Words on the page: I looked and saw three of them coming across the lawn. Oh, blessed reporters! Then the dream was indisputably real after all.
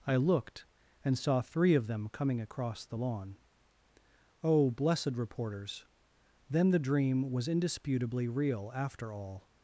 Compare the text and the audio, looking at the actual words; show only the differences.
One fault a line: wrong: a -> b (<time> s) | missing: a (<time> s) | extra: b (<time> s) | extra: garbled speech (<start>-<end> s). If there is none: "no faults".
no faults